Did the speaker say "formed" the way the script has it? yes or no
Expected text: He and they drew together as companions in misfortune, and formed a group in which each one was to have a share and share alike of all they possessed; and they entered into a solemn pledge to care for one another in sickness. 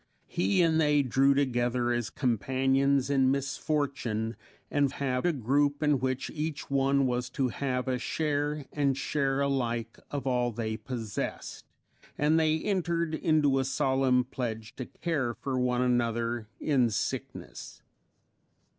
no